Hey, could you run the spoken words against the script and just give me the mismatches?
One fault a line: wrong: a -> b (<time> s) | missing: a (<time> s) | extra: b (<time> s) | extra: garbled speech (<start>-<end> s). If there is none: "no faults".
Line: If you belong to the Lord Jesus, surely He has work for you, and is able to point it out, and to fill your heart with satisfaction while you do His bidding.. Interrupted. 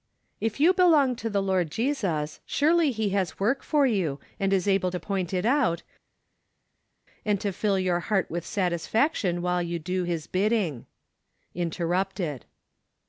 no faults